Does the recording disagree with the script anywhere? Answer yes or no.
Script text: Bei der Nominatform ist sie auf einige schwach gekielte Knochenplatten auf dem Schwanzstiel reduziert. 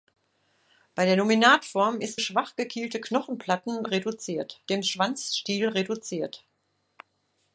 yes